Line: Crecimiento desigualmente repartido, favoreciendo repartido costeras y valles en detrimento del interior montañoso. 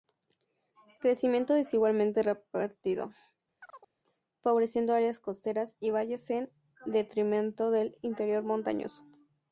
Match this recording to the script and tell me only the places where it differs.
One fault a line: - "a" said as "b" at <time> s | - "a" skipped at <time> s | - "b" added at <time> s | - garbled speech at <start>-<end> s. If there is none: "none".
- "repartido" said as "áreas" at 4.9 s